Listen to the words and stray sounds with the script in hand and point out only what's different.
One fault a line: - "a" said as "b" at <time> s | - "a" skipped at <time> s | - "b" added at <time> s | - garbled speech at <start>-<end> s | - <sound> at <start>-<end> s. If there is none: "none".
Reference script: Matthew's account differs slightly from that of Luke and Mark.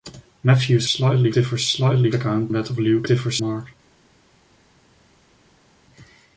- "account" said as "slightly" at 0.9 s
- "from" said as "account" at 2.1 s
- "and" said as "differs" at 3.1 s